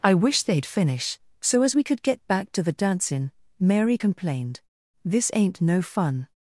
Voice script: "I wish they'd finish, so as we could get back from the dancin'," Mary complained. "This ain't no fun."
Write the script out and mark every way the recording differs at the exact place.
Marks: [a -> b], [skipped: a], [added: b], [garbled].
"I wish they'd finish, so as we could get back [from -> to] the dancin'," Mary complained. "This ain't no fun."